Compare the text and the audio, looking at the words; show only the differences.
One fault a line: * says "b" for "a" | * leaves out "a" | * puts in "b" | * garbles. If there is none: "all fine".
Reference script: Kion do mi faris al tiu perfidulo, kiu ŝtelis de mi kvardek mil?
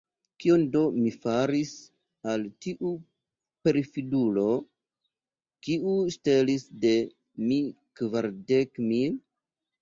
all fine